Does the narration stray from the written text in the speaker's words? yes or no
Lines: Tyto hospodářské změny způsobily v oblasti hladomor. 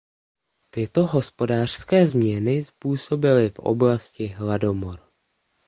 no